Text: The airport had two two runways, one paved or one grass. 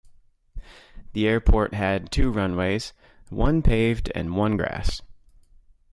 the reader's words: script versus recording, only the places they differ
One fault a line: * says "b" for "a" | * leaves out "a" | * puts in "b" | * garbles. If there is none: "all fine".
* leaves out "two"
* says "and" for "or"